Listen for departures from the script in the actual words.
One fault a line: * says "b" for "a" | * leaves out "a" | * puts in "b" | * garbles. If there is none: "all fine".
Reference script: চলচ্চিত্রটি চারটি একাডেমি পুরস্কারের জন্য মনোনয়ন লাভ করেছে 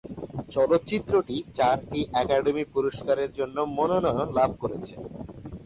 all fine